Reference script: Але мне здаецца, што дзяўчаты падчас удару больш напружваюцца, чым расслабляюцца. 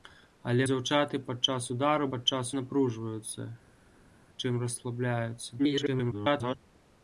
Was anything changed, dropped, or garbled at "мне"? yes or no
yes